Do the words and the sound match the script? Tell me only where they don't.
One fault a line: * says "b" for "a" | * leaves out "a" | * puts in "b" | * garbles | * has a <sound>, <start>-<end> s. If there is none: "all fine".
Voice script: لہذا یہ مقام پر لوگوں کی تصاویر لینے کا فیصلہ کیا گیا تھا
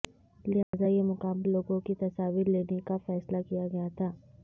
* has a dropout, 0.6-0.7 s
* leaves out "پر"